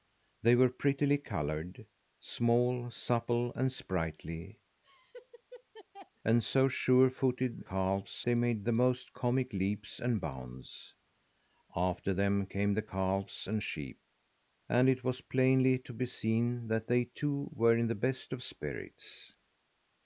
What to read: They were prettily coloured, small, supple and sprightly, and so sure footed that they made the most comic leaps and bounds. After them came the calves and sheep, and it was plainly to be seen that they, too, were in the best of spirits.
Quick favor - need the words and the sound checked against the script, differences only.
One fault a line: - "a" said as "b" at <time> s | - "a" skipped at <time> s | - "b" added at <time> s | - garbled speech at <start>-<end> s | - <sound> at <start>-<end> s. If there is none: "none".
- laugh at 4.8-6.1 s
- "that" said as "calves" at 7.6 s